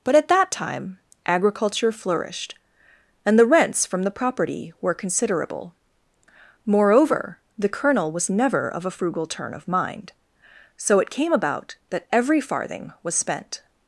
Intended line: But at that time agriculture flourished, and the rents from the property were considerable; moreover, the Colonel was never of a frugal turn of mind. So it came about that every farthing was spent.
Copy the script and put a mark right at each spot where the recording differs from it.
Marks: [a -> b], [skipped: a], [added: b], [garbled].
But at that time agriculture flourished, and the rents from the property were considerable; moreover, the Colonel was never of a frugal turn of mind. So it came about that every farthing was spent.